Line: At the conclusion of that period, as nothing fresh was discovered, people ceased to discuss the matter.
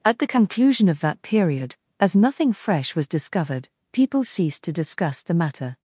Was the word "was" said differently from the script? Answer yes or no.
no